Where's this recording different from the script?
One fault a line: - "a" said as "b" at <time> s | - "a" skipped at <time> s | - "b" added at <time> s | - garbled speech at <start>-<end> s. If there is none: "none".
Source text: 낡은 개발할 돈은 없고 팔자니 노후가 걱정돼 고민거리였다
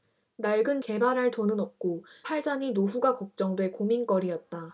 none